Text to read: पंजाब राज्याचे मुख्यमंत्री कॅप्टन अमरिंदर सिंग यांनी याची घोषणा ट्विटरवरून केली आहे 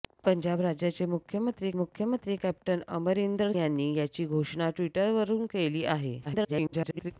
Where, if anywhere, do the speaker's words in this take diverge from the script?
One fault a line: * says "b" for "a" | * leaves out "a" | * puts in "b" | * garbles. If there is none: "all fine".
* puts in "मुख्यमंत्री"
* leaves out "सिंग"
* garbles